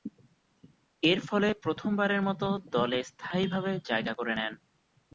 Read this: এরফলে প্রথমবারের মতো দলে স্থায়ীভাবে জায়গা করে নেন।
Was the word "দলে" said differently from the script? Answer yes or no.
no